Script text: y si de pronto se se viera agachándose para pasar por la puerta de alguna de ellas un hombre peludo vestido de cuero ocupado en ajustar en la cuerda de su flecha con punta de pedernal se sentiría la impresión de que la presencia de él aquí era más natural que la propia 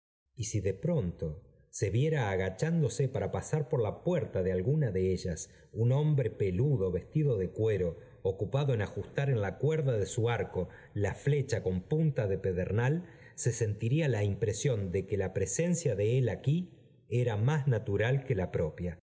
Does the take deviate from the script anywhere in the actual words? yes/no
yes